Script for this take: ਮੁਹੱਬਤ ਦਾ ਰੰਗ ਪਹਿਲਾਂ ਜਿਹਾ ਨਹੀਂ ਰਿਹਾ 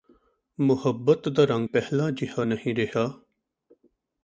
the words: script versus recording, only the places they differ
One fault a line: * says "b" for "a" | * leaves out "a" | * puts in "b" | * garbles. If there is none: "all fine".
all fine